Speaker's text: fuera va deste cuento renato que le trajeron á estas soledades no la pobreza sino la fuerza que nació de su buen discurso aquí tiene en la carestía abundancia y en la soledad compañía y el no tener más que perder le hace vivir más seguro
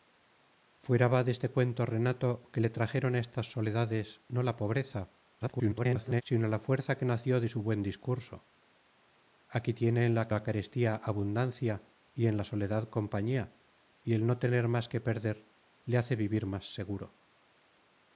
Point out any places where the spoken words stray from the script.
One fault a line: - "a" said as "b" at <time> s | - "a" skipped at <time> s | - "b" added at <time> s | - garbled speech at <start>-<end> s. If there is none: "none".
- garbled speech at 5.4-6.2 s
- "la" added at 10.3 s